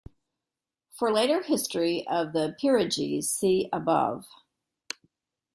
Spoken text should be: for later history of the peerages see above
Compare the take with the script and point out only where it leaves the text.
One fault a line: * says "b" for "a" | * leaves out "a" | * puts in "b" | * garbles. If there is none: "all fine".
all fine